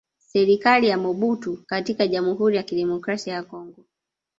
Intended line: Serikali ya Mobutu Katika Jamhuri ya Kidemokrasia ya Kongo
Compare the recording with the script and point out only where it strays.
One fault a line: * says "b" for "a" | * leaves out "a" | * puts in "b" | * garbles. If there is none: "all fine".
all fine